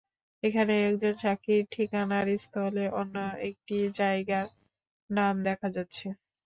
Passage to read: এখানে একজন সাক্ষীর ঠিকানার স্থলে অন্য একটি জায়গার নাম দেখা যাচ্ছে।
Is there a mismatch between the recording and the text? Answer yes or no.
no